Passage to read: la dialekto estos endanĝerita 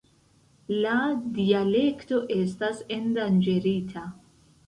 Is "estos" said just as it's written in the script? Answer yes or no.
no